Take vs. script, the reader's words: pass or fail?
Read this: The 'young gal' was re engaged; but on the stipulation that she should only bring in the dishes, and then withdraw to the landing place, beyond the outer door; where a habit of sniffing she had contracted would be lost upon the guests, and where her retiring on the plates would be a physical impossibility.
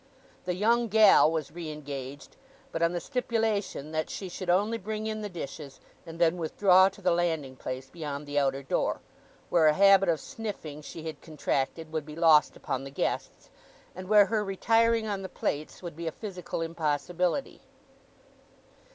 pass